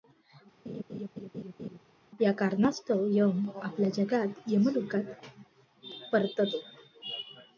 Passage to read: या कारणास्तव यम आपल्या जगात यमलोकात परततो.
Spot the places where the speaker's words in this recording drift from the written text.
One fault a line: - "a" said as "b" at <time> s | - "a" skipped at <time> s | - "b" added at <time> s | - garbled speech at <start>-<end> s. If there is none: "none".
none